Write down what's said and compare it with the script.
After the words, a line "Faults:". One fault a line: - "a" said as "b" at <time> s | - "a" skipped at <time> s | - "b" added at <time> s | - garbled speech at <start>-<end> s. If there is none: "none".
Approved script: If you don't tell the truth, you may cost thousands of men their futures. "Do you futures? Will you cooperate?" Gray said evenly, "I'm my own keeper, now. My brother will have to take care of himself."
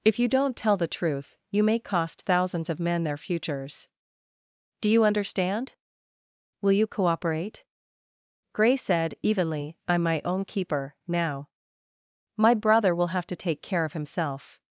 If you don't tell the truth, you may cost thousands of men their futures. "Do you understand? Will you cooperate?" Gray said evenly, "I'm my own keeper, now. My brother will have to take care of himself."
Faults:
- "futures" said as "understand" at 5.0 s